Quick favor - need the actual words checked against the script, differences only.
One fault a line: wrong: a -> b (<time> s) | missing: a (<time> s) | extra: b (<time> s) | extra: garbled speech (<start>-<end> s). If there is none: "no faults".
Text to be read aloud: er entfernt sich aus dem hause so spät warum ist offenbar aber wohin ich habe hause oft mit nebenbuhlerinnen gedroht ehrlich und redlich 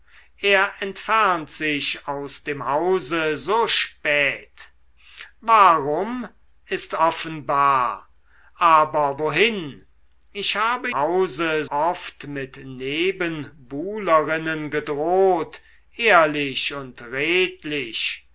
no faults